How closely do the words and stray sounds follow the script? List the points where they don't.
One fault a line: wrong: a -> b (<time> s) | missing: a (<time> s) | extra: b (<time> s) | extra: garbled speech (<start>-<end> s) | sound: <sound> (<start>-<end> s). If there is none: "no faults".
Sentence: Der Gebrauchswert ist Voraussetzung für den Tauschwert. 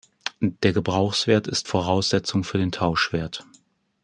no faults